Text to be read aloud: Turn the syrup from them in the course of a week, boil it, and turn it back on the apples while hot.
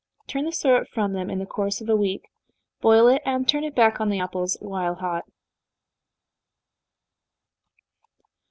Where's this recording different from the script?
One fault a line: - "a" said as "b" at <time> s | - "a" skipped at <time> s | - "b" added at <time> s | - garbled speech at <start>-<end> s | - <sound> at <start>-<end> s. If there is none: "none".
none